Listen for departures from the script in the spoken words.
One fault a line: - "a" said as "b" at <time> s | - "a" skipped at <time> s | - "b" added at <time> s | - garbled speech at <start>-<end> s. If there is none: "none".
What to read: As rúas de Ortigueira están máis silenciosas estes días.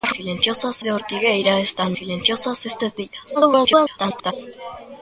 - "rúas" said as "silenciosas" at 0.2 s
- "máis" skipped at 1.9 s
- garbled speech at 3.3-4.3 s